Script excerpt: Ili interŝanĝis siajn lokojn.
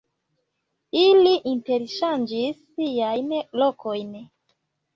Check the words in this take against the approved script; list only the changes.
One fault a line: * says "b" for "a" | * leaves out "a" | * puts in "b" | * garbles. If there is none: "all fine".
all fine